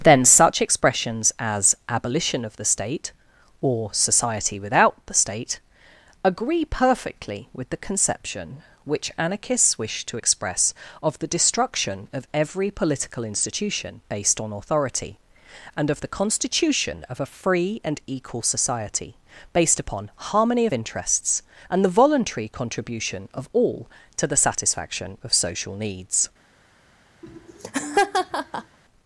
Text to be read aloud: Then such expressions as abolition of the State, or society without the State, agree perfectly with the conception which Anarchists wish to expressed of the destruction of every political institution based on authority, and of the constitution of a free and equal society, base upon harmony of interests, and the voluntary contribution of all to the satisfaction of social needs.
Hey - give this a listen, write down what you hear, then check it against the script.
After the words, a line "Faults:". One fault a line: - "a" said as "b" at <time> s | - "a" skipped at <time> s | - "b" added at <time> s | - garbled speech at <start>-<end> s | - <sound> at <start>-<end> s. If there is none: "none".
Then such expressions as abolition of the State, or society without the State, agree perfectly with the conception which Anarchists wish to express of the destruction of every political institution based on authority, and of the constitution of a free and equal society, based upon harmony of interests, and the voluntary contribution of all to the satisfaction of social needs.
Faults:
- "expressed" said as "express" at 10.1 s
- "base" said as "based" at 19.5 s
- laugh at 27.2-28.8 s